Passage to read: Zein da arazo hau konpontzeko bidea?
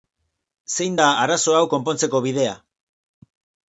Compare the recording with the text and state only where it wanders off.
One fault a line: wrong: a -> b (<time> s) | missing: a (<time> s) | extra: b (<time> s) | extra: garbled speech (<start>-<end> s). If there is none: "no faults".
no faults